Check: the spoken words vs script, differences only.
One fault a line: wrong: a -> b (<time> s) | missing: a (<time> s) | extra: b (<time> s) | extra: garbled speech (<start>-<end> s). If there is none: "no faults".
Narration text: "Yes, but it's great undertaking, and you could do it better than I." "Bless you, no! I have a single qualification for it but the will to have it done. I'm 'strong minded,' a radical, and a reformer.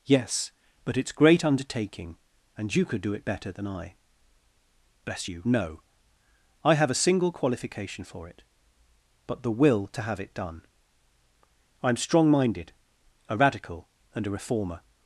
no faults